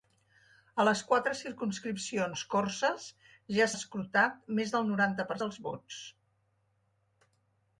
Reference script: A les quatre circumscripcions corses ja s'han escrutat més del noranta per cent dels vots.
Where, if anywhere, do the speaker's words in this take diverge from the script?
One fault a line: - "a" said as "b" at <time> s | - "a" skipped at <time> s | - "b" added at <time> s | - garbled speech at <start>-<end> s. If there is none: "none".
- "s'han" skipped at 3.7 s
- "cent" skipped at 5.4 s